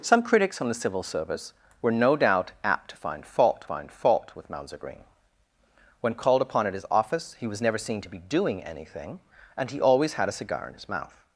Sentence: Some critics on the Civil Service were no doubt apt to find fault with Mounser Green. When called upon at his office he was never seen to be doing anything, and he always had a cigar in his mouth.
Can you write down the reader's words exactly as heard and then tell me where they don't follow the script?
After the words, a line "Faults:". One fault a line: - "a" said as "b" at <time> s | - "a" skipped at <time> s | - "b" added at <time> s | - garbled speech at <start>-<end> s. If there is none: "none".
Some critics on the Civil Service were no doubt apt to find fault find fault with Mounser Green. When called upon at his office he was never seen to be doing anything, and he always had a cigar in his mouth.
Faults:
- "find fault" added at 3.6 s